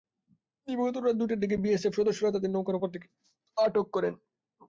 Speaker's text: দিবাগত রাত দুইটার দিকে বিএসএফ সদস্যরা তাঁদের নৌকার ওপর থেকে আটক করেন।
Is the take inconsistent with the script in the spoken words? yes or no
no